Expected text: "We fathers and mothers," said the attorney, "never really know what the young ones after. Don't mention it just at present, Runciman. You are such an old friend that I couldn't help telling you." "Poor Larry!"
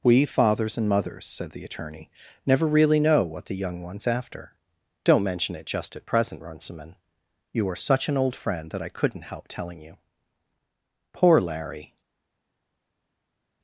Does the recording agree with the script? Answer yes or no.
yes